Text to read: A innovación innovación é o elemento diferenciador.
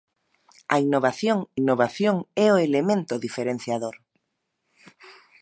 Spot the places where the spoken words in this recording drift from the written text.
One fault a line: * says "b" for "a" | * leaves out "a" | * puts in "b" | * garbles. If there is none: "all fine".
all fine